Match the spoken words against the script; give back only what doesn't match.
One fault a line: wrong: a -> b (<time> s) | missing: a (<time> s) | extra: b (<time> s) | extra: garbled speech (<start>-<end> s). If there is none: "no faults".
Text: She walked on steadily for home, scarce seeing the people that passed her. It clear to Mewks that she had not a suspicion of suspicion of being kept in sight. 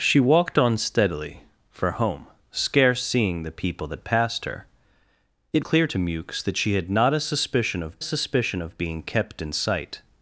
no faults